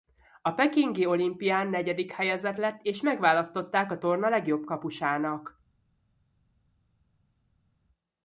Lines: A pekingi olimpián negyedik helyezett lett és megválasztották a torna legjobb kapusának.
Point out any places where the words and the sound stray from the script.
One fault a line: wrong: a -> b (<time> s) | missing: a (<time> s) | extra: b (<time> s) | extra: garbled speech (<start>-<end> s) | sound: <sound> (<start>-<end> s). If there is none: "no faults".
no faults